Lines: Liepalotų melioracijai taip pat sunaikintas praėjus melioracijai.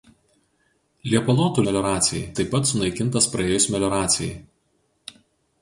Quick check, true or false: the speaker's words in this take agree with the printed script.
true